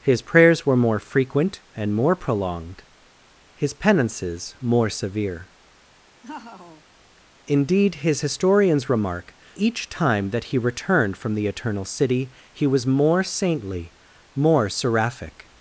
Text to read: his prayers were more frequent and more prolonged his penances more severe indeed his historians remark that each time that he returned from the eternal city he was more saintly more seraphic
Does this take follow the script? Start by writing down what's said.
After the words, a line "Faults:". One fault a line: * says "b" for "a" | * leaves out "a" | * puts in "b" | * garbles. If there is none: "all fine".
his prayers were more frequent and more prolonged his penances more severe indeed his historians remark each time that he returned from the eternal city he was more saintly more seraphic
Faults:
* leaves out "that"